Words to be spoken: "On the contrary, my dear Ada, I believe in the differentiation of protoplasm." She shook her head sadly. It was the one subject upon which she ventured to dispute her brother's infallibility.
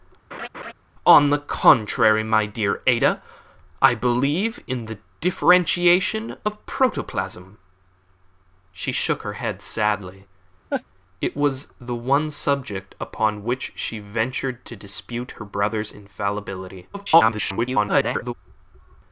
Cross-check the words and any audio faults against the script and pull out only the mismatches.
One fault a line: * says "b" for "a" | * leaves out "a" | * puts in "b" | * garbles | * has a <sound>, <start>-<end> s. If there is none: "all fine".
* has a laugh, 0.3-0.7 s
* has a laugh, 10.7-10.8 s
* garbles